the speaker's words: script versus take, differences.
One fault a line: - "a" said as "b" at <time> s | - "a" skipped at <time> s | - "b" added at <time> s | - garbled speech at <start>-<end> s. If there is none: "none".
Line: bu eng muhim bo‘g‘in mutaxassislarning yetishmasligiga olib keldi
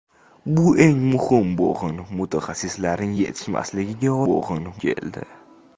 - "olib" said as "bo‘g‘in" at 4.3 s